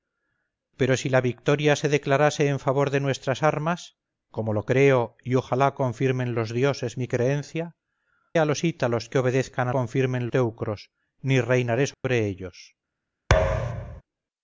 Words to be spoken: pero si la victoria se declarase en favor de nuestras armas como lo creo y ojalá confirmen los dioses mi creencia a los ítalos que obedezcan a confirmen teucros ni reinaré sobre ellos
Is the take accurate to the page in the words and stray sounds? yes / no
no